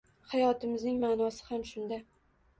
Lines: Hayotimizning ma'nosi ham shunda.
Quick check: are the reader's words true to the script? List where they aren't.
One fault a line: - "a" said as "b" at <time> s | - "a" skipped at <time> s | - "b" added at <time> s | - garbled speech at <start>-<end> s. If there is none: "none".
none